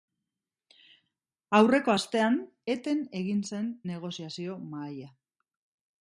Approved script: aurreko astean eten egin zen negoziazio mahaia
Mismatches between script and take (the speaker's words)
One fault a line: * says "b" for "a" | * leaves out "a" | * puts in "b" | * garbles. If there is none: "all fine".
all fine